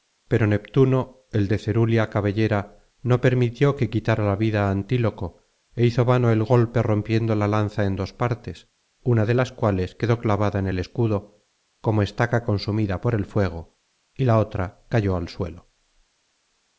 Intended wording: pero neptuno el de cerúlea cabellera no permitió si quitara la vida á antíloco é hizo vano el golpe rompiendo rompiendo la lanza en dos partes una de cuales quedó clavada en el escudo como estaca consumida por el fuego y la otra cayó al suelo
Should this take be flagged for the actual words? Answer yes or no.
yes